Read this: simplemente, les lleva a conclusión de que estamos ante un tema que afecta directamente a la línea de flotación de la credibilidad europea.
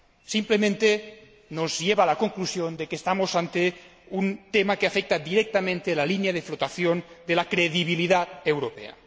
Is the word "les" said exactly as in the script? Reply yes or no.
no